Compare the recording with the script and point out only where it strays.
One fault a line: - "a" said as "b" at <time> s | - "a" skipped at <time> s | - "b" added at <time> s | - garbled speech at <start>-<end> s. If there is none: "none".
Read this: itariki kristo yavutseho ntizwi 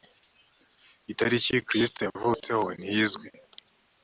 none